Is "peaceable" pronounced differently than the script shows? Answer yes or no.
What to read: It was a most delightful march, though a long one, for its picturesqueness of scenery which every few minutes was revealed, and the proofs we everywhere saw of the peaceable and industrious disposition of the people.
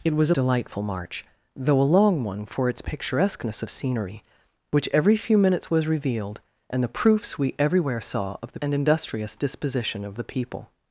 yes